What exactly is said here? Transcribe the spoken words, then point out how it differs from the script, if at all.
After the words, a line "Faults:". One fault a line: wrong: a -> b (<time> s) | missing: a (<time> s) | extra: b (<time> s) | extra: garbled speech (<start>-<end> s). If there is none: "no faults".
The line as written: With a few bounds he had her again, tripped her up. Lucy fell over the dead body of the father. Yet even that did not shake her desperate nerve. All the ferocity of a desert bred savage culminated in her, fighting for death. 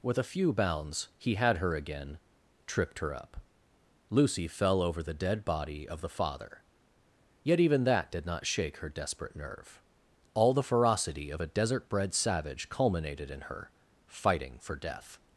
With a few bounds he had her again, tripped her up. Lucy fell over the dead body of the father. Yet even that did not shake her desperate nerve. All the ferocity of a desert bred savage culminated in her, fighting for death.
Faults:
no faults